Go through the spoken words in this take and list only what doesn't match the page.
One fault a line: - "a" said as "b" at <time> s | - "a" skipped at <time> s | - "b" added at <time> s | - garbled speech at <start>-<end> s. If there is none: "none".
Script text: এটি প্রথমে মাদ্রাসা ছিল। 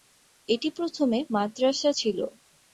none